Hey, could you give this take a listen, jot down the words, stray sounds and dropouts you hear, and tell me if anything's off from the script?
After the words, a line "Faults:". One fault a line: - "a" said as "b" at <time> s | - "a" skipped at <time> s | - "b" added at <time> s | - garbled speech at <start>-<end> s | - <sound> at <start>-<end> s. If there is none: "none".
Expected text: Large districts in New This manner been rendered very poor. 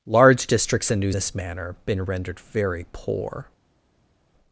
Large districts in New This manner been rendered very poor.
Faults:
none